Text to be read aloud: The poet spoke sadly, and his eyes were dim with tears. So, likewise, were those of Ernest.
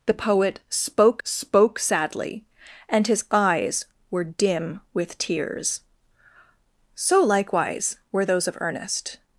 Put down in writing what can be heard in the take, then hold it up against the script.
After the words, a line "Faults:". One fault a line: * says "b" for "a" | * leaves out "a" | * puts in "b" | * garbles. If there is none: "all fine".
The poet spoke spoke sadly, and his eyes were dim with tears. So, likewise, were those of Ernest.
Faults:
* puts in "spoke"